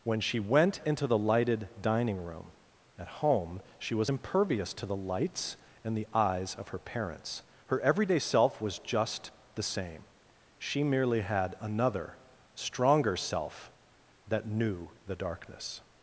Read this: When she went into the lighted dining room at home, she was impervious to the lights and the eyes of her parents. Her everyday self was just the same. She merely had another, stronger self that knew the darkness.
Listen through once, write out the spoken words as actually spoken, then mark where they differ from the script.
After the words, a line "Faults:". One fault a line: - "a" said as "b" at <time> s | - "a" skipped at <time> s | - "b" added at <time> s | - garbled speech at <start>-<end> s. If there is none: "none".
When she went into the lighted dining room at home, she was impervious to the lights and the eyes of her parents. Her everyday self was just the same. She merely had another, stronger self that knew the darkness.
Faults:
none